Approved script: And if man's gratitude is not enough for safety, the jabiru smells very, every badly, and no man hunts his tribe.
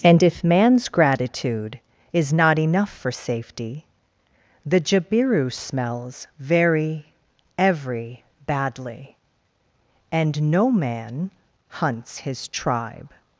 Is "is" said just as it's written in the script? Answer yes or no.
yes